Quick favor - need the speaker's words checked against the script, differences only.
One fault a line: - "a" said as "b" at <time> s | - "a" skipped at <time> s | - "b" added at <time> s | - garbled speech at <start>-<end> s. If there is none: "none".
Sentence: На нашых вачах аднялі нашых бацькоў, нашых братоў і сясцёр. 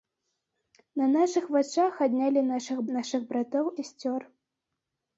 - "бацькоў" skipped at 2.8 s
- "і" skipped at 3.7 s